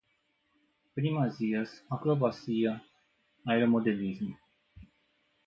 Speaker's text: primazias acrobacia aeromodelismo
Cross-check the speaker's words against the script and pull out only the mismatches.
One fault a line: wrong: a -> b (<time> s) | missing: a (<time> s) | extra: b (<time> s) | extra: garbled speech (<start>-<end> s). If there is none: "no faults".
no faults